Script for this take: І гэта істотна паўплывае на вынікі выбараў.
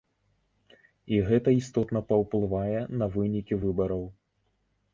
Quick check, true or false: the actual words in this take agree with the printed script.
true